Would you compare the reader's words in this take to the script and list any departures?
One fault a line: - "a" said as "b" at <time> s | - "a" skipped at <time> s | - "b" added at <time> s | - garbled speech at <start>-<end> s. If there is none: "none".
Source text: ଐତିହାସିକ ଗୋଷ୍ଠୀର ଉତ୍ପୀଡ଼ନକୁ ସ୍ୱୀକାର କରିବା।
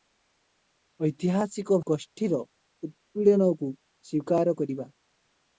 none